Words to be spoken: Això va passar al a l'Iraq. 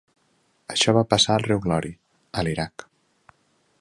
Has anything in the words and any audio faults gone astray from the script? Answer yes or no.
yes